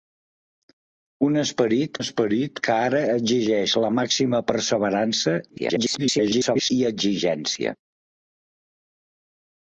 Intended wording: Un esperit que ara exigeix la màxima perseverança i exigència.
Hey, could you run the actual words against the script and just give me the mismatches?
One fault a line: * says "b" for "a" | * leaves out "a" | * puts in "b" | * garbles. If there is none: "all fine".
* puts in "esperit"
* garbles